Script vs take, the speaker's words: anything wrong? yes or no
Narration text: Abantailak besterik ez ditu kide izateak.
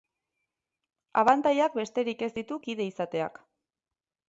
no